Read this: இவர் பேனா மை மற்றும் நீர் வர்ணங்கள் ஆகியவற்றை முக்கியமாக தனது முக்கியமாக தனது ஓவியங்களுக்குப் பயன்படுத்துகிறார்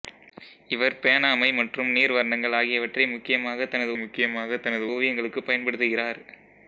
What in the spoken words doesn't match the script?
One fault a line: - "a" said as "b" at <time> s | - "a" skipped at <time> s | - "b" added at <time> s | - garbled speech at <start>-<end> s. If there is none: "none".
none